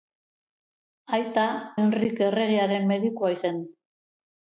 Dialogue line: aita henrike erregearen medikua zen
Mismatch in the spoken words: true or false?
false